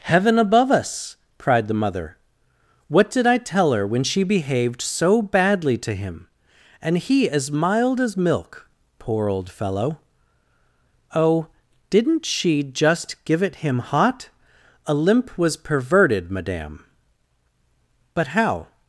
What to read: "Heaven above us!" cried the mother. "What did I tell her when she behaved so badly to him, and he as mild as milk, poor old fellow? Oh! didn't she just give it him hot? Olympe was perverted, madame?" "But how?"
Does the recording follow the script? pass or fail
pass